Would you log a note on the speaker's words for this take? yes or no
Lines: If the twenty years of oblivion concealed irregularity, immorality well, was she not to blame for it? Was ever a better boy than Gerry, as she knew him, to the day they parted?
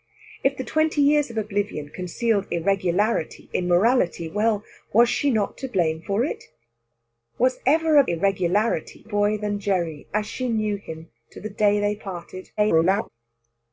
yes